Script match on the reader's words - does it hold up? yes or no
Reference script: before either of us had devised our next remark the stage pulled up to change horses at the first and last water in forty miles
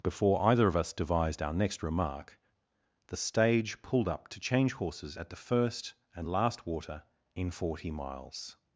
no